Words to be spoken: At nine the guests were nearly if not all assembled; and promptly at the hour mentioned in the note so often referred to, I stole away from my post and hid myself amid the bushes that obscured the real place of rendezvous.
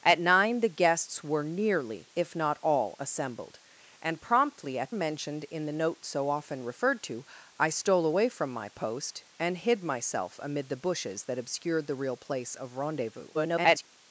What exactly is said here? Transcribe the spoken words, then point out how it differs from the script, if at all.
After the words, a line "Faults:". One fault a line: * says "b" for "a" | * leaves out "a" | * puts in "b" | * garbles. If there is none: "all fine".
At nine the guests were nearly if not all assembled; and promptly at mentioned in the note so often referred to, I stole away from my post and hid myself amid the bushes that obscured the real place of rendezvous. [garbled]
Faults:
* leaves out "the hour"
* garbles